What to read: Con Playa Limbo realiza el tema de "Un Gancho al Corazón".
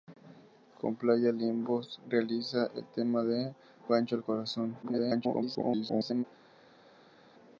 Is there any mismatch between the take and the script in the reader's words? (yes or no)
yes